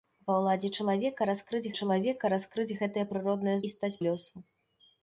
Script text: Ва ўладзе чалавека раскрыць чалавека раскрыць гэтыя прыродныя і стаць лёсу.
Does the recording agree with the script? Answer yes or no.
yes